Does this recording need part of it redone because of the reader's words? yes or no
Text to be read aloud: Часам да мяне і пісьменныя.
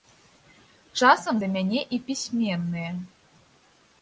no